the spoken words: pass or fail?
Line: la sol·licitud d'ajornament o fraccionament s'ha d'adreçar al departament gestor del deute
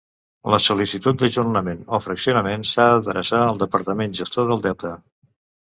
pass